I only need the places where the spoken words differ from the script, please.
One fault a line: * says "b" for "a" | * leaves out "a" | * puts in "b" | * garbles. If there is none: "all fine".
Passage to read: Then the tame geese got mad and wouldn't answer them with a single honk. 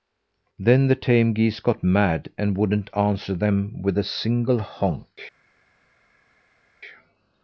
all fine